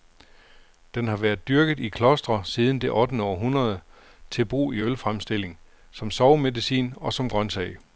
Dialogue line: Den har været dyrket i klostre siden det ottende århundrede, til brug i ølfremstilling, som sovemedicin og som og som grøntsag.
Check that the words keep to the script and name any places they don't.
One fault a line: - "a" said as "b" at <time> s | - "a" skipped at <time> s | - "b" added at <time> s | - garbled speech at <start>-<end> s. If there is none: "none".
- "og som" skipped at 7.3 s